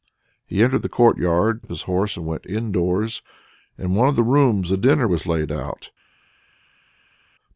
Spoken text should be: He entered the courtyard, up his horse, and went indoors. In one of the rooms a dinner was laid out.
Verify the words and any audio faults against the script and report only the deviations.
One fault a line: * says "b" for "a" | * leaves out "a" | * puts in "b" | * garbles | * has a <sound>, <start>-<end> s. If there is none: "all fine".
all fine